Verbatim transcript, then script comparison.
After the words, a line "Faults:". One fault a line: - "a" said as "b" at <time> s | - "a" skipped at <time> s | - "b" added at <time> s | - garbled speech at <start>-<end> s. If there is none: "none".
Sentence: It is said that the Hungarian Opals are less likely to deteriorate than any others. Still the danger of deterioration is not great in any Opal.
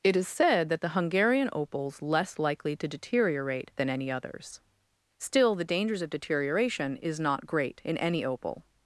It is said that the Hungarian Opals less likely to deteriorate than any others. Still the dangers of deterioration is not great in any Opal.
Faults:
- "are" skipped at 2.0 s
- "danger" said as "dangers" at 5.6 s